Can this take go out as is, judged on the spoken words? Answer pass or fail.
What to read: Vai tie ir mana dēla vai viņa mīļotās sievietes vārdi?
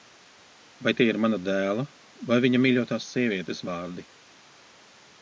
pass